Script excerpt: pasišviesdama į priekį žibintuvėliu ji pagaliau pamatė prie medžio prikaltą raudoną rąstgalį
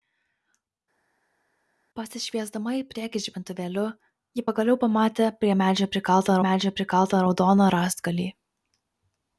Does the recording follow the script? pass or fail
fail